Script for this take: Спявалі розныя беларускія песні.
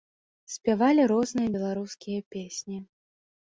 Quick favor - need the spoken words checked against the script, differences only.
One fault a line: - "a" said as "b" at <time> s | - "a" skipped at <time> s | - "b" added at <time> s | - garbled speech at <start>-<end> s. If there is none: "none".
none